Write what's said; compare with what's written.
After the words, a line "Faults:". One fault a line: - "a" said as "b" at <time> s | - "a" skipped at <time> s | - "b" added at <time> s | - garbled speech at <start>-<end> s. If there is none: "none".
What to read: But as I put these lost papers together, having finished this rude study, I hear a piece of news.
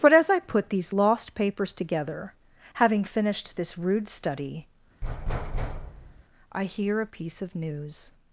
But as I put these lost papers together, having finished this rude study, I hear a piece of news.
Faults:
none